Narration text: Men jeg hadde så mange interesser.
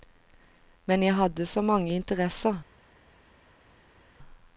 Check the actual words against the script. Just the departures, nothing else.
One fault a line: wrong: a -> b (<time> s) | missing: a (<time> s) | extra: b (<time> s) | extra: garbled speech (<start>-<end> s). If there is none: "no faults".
no faults